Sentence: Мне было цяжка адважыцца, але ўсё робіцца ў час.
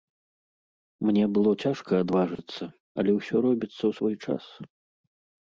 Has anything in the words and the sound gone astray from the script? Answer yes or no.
yes